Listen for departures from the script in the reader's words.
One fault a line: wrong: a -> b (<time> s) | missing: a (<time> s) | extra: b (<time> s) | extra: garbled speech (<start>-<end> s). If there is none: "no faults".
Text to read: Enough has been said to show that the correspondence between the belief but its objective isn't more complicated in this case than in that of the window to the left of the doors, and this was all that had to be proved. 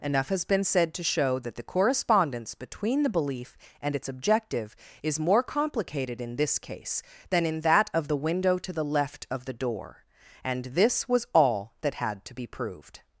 wrong: but -> and (3.8 s)
wrong: isn't -> is (5.0 s)
wrong: doors -> door (9.5 s)